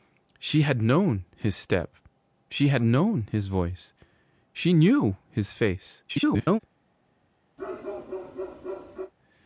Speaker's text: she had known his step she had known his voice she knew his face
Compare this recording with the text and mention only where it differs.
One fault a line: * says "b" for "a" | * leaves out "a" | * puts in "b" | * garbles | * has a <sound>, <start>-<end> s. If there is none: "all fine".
* garbles
* has a bark, 7.6-9.1 s